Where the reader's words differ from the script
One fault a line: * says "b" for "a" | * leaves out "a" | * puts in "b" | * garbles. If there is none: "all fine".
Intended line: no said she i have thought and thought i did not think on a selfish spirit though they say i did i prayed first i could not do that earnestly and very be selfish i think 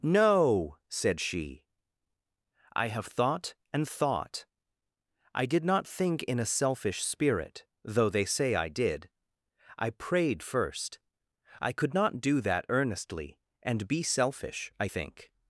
* says "in" for "on"
* leaves out "very"